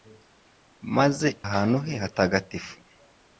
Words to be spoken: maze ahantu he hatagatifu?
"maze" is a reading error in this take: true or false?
false